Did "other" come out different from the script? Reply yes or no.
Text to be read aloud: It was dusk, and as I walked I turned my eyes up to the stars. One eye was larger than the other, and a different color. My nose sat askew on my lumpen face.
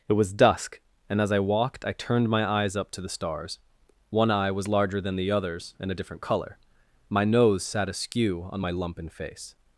yes